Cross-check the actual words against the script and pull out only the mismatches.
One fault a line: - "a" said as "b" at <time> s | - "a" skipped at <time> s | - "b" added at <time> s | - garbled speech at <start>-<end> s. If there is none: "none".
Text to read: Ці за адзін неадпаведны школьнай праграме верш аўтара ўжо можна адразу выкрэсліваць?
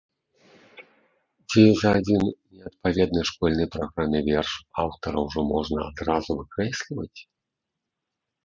none